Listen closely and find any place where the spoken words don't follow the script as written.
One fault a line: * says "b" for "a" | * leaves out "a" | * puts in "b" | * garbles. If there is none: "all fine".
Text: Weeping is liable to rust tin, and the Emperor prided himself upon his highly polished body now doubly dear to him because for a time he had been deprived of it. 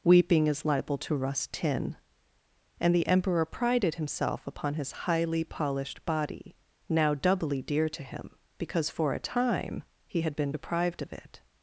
all fine